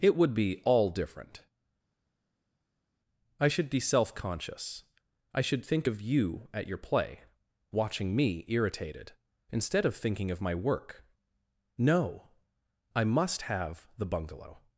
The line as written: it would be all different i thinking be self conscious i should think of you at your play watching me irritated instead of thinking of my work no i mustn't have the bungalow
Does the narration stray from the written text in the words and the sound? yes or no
yes